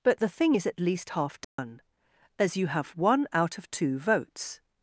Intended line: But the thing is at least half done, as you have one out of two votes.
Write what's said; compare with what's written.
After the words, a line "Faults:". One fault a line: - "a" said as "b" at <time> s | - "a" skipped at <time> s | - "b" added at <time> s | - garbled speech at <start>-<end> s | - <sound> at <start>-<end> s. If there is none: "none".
But the thing is at least half done, as you have one out of two votes.
Faults:
- dropout at 1.4-1.6 s